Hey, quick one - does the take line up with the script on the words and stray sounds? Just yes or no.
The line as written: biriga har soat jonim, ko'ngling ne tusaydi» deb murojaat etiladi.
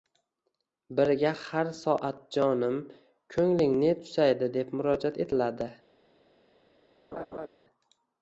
no